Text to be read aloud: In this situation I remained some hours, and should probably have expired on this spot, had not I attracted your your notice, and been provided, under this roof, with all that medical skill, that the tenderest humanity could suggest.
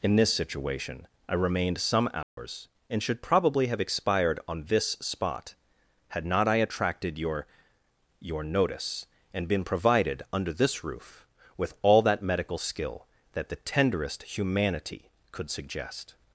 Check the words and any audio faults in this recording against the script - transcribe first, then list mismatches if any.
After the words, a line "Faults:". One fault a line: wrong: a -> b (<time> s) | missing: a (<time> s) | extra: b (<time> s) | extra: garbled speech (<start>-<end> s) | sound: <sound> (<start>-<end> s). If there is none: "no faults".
In this situation I remained some hours, and should probably have expired on this spot, had not I attracted your your notice, and been provided, under this roof, with all that medical skill, that the tenderest humanity could suggest.
Faults:
sound: dropout (2.2-2.4 s)